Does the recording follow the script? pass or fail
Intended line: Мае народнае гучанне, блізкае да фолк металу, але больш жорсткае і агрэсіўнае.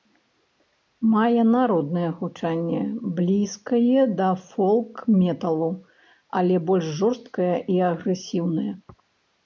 pass